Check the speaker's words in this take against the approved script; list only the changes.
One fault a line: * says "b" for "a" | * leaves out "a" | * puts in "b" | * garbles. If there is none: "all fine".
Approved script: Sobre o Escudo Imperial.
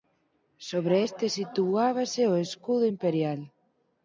* puts in "este situábase"